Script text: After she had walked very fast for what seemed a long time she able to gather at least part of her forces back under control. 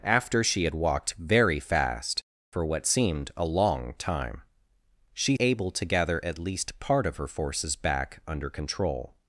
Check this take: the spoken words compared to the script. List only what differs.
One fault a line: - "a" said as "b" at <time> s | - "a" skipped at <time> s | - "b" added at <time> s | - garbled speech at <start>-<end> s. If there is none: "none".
none